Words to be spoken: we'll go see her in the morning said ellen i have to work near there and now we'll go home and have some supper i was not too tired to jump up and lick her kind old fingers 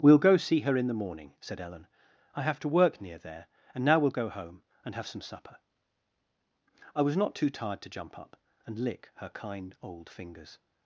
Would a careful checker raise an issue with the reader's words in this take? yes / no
no